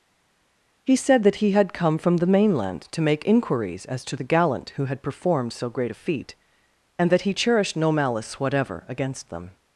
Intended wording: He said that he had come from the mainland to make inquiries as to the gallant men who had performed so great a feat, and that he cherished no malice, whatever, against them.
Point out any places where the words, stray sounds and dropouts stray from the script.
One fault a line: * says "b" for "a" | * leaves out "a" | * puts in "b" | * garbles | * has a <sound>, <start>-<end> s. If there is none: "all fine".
* leaves out "men"